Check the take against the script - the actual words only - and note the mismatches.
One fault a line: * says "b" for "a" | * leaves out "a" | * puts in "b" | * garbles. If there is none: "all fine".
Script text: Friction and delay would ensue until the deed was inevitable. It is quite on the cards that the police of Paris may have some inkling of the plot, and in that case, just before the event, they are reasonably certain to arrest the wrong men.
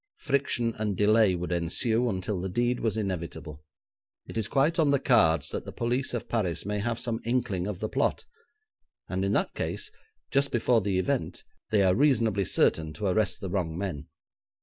all fine